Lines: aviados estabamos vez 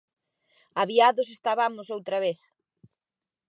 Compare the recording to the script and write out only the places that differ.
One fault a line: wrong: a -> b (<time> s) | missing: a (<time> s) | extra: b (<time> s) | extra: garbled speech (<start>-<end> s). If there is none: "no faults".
extra: outra (1.9 s)